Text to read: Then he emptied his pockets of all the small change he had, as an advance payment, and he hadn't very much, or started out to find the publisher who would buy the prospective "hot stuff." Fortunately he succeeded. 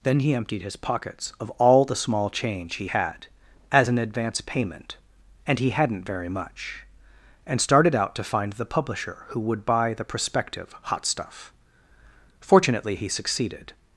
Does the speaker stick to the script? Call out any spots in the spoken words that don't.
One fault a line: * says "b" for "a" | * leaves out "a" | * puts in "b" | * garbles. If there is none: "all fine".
* says "and" for "or"